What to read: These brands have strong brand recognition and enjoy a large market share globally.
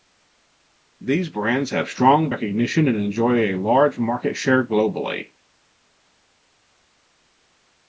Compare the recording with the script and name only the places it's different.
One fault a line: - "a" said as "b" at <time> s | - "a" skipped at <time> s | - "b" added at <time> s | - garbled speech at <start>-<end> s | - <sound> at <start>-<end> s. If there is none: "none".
- "brand" skipped at 2.3 s